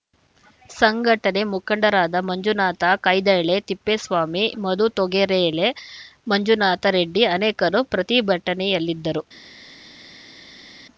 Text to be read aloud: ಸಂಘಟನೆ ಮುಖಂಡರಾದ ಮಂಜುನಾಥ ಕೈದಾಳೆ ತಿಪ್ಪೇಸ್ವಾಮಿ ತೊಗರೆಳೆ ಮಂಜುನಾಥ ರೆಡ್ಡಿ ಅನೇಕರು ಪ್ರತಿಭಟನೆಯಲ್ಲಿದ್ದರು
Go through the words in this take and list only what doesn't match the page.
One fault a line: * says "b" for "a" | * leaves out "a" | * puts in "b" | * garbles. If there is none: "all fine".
* puts in "ಮಧು"